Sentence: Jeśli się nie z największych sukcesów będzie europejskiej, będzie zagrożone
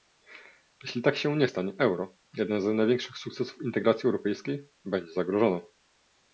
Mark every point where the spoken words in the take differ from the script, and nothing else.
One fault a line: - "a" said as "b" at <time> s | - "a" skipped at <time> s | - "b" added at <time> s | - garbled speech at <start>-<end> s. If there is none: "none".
- "tak" added at 1.0 s
- "stanie euro jeden" added at 1.4 s
- "będzie" said as "integracji" at 3.6 s